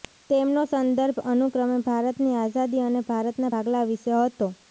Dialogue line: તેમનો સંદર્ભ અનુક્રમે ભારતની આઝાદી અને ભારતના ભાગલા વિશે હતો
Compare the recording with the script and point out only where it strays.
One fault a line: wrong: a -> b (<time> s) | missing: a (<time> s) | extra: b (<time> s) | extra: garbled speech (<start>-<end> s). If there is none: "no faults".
no faults